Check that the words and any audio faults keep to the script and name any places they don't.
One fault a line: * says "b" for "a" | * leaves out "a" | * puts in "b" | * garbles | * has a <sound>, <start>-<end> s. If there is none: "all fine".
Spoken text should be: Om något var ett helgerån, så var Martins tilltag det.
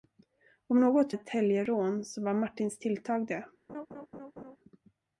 * leaves out "var"
* has a laugh, 3.7-4.6 s